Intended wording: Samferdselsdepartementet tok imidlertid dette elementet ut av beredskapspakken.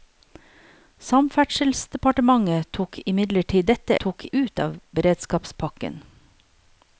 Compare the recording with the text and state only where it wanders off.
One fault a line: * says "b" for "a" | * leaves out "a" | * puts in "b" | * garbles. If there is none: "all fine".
* says "tok" for "elementet"